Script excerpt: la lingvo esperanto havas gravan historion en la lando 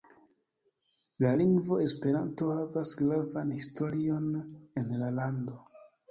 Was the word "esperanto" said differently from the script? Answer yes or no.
no